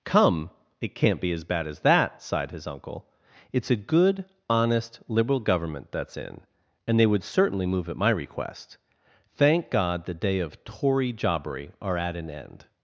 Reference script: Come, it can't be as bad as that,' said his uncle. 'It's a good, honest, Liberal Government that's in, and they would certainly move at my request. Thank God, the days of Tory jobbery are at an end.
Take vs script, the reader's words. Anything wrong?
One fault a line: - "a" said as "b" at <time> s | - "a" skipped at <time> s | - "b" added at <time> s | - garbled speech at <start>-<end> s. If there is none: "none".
- "said" said as "sighed" at 2.2 s
- "days" said as "day" at 10.1 s